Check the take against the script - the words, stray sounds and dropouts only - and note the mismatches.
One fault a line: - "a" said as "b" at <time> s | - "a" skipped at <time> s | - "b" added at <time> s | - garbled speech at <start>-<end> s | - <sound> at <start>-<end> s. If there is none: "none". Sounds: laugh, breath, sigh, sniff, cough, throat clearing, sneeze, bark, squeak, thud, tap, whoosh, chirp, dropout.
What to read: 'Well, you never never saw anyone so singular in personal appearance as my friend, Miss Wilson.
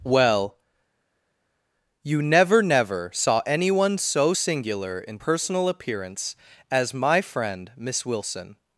none